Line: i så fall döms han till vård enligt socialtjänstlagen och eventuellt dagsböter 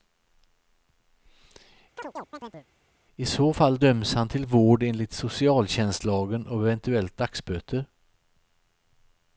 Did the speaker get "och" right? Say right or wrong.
right